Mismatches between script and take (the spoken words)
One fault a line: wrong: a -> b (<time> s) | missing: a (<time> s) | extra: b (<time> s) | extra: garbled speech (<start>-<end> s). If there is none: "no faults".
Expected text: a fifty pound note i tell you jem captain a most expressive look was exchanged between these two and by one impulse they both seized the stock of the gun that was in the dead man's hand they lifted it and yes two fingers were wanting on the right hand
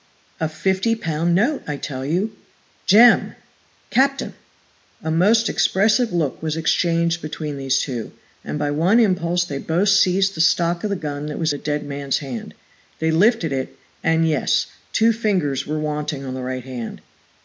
missing: in (11.5 s)